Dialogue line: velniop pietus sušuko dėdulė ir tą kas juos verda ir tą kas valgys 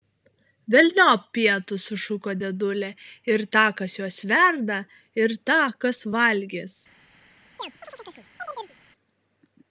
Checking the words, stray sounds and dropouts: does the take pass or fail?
fail